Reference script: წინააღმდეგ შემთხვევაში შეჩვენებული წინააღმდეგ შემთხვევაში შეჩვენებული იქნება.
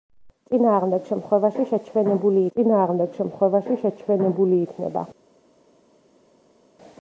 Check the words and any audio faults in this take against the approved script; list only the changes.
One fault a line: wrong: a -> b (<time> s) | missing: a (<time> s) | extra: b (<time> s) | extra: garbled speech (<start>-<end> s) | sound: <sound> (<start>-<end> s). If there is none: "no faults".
no faults